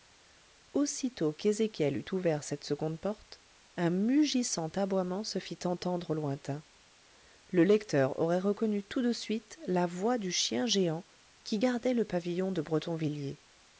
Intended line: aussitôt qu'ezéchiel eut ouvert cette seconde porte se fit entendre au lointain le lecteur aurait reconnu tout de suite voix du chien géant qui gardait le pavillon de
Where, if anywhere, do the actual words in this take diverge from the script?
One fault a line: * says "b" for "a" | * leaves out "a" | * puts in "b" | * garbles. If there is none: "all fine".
* puts in "un mugissant aboiement"
* puts in "la"